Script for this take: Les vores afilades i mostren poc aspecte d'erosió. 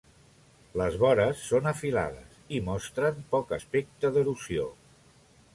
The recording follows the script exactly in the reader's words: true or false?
false